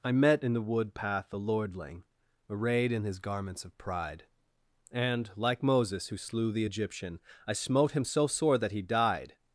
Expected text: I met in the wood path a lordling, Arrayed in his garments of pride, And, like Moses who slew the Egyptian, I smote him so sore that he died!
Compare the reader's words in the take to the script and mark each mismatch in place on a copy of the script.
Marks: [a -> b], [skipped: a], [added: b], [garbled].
I met in the wood path a lordling, Arrayed in his garments of pride, And, like Moses who slew the Egyptian, I smote him so sore that he died!